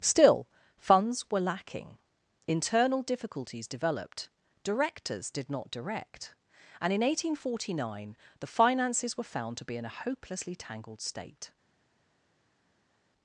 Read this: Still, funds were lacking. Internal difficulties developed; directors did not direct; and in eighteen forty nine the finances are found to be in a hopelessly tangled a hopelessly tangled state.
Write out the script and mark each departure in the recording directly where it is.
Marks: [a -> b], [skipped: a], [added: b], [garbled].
Still, funds were lacking. Internal difficulties developed; directors did not direct; and in eighteen forty nine the finances [are -> were] found to be in a hopelessly tangled [skipped: a hopelessly tangled] state.